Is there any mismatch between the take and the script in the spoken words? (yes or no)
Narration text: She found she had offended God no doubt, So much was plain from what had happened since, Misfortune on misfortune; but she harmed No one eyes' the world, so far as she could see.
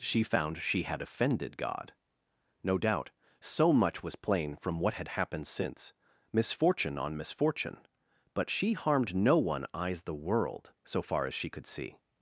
no